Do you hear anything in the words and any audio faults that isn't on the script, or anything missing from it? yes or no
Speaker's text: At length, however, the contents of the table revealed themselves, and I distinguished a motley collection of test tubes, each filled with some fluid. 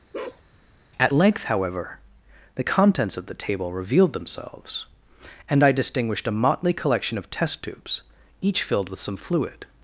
yes